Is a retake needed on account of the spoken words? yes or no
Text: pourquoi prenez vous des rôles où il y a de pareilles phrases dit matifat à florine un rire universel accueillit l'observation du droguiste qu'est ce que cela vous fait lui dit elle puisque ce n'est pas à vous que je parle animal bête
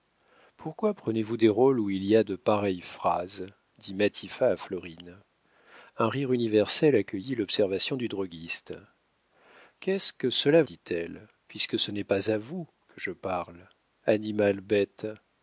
yes